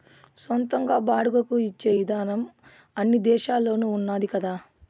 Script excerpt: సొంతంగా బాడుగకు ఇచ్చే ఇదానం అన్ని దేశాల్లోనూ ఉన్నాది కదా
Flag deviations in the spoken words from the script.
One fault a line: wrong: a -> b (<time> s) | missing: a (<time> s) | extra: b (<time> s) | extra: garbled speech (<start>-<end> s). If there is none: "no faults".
no faults